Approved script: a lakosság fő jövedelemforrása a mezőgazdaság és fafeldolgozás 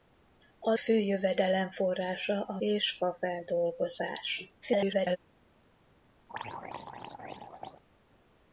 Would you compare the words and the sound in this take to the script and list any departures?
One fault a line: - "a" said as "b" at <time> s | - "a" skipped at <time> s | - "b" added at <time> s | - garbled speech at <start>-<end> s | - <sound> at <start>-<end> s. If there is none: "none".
- "lakosság" skipped at 0.7 s
- "mezőgazdaság" skipped at 2.6 s
- garbled speech at 4.6-5.2 s
- throat clearing at 6.3-7.8 s